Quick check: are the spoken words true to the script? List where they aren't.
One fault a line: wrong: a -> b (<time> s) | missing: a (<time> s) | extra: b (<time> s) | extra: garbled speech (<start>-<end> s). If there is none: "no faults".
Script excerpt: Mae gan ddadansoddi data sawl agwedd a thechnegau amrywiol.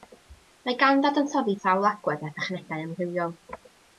missing: data (1.6 s)